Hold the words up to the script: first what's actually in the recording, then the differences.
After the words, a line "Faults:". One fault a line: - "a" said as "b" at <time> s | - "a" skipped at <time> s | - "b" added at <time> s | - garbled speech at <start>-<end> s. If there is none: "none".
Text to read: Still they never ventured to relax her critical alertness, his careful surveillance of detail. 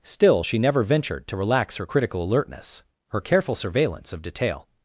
Still she never ventured to relax her critical alertness, her careful surveillance of detail.
Faults:
- "they" said as "she" at 0.4 s
- "his" said as "her" at 3.1 s